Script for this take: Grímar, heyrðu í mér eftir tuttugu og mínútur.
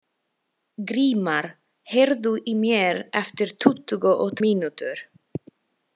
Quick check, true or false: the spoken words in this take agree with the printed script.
true